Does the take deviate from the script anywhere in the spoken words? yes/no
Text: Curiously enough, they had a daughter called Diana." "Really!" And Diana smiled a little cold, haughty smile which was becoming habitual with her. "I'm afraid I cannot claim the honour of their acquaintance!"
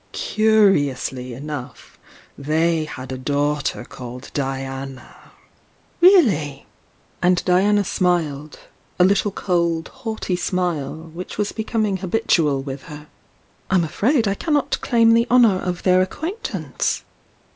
no